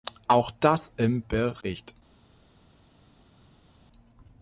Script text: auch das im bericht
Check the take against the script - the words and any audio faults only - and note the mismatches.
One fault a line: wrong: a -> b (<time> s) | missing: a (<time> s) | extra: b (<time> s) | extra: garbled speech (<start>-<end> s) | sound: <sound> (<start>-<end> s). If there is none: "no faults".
no faults